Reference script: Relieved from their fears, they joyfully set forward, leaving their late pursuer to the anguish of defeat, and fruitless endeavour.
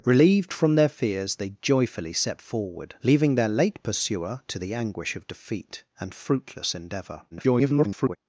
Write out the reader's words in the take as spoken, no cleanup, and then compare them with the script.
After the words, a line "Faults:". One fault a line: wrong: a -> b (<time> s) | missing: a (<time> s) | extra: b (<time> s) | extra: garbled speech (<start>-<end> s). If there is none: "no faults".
Relieved from their fears, they joyfully set forward, leaving their late pursuer to the anguish of defeat, and fruitless endeavour. [garbled]
Faults:
extra: garbled speech (7.3-8.2 s)